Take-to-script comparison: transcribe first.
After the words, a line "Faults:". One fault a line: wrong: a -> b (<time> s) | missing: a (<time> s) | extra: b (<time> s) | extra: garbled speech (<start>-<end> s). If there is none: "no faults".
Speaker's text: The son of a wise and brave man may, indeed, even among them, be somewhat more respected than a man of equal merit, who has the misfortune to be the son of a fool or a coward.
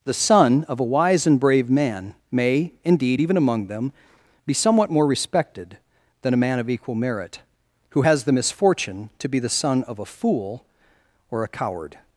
The son of a wise and brave man may, indeed, even among them, be somewhat more respected than a man of equal merit, who has the misfortune to be the son of a fool or a coward.
Faults:
no faults